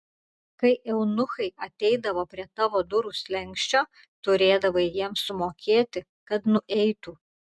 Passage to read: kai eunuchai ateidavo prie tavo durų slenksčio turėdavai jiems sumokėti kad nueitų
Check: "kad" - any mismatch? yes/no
no